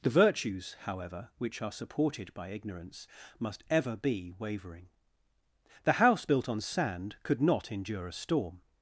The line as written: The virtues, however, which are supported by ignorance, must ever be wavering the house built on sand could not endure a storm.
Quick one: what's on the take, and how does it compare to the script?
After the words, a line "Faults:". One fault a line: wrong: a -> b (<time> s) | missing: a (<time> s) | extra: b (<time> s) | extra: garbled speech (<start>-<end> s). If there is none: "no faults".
The virtues, however, which are supported by ignorance, must ever be wavering the house built on sand could not endure a storm.
Faults:
no faults